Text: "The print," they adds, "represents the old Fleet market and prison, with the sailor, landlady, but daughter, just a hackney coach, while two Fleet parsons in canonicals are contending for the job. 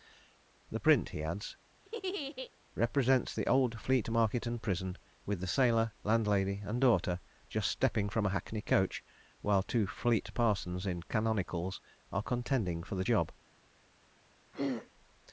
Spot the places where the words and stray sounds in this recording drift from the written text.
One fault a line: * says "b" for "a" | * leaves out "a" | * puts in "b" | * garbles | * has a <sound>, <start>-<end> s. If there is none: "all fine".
* says "he" for "they"
* has a laugh, 1.8-2.5 s
* says "and" for "but"
* puts in "stepping from"
* has a throat clearing, 14.5-14.9 s